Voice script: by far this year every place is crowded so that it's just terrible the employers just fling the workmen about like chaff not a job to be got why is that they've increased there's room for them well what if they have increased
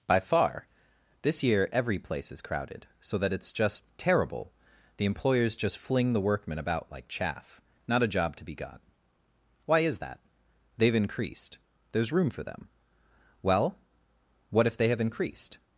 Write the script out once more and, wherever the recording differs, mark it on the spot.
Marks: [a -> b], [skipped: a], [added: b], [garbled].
by far this year every place is crowded so that it's just terrible the employers just fling the workmen about like chaff not a job to be got why is that they've increased there's room for them well what if they have increased